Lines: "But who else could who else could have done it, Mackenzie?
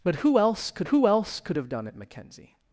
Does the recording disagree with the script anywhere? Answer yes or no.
no